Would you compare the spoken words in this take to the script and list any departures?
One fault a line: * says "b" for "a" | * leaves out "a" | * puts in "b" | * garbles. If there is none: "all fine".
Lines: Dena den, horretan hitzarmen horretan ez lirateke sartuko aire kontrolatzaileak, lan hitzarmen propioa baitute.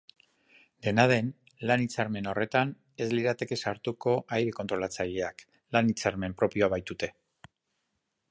* says "lan" for "horretan"